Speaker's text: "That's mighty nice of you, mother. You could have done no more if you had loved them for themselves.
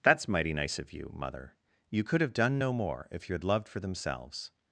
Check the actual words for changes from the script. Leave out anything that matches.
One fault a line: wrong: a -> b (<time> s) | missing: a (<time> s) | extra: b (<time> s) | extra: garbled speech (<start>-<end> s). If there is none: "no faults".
missing: them (3.7 s)